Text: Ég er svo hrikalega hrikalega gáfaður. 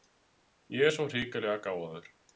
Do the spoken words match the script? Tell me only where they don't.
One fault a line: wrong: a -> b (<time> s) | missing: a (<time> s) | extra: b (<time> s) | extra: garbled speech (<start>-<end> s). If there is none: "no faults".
missing: hrikalega (1.6 s)